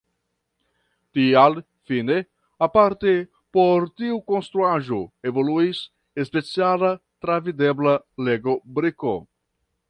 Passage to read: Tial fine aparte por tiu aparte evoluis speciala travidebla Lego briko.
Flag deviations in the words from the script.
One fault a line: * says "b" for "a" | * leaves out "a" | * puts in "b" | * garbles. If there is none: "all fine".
* says "konstruaĵo" for "aparte"